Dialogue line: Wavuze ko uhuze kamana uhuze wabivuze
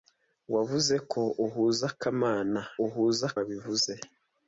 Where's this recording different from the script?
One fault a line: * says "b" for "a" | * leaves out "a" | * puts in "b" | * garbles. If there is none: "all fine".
all fine